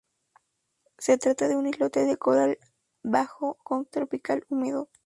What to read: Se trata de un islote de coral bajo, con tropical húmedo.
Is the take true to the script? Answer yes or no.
yes